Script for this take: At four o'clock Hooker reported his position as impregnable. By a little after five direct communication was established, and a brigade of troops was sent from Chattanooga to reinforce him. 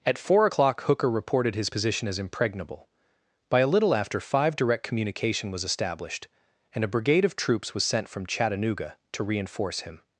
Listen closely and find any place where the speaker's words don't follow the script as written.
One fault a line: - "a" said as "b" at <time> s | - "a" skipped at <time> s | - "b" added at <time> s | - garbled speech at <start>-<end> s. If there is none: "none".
none